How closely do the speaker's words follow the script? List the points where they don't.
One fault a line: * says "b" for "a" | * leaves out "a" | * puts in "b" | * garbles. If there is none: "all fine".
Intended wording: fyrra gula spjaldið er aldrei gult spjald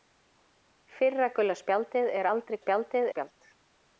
* says "spjaldið" for "gult"